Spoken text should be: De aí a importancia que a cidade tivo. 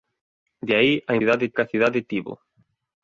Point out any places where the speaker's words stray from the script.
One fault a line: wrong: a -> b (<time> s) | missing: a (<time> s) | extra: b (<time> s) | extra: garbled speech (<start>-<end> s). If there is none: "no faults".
wrong: importancia -> cidade (1.2 s)